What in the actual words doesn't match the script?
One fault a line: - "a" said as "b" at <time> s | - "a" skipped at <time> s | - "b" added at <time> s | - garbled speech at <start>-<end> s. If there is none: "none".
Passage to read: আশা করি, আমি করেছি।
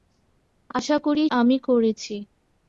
none